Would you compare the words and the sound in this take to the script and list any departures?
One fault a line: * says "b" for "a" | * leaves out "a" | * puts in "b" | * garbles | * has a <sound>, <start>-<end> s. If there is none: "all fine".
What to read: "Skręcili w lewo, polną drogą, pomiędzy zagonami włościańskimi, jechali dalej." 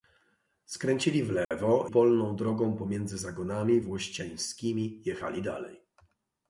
* has a dropout, 1.4-1.5 s